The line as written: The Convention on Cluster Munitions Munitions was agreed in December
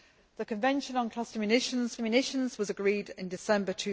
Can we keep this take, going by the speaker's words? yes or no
yes